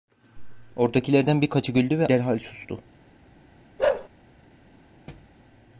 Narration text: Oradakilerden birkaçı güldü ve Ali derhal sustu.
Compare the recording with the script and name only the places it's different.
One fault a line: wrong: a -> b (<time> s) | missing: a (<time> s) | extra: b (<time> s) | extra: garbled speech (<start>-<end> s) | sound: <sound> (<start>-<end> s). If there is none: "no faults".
missing: Ali (2.1 s)
sound: bark (3.8-4.1 s)
sound: thud (5.1-5.4 s)